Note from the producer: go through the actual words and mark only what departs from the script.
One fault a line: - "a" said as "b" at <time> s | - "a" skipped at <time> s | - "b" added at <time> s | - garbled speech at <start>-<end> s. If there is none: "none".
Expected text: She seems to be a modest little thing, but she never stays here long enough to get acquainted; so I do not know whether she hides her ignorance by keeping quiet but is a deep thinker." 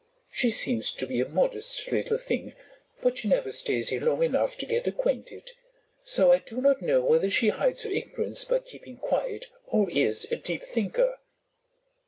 - "but" said as "or" at 9.7 s